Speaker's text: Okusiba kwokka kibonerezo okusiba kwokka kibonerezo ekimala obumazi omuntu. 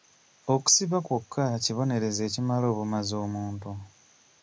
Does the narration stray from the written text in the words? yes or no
yes